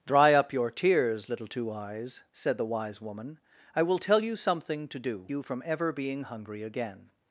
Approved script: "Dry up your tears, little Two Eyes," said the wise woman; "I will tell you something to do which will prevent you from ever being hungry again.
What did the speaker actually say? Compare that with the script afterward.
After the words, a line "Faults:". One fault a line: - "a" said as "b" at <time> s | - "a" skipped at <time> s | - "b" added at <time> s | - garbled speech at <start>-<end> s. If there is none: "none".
"Dry up your tears, little Two Eyes," said the wise woman; "I will tell you something to do you from ever being hungry again.
Faults:
- "which will prevent" skipped at 5.3 s